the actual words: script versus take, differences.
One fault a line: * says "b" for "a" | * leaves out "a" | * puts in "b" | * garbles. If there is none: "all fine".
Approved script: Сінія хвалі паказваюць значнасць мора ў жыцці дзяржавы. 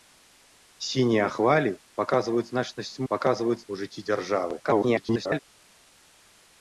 * says "паказваюць" for "мора"
* garbles